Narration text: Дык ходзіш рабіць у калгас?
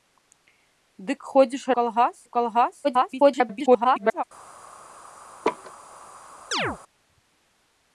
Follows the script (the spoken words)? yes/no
no